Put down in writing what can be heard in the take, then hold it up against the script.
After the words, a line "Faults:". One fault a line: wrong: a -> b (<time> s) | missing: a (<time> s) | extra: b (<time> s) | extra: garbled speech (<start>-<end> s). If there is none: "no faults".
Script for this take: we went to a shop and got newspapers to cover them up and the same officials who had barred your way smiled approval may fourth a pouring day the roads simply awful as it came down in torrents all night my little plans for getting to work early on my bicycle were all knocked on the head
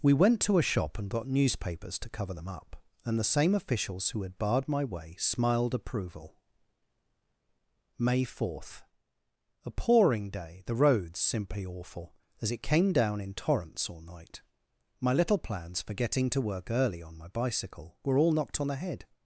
we went to a shop and got newspapers to cover them up and the same officials who had barred my way smiled approval may fourth a pouring day the roads simply awful as it came down in torrents all night my little plans for getting to work early on my bicycle were all knocked on the head
Faults:
wrong: your -> my (4.7 s)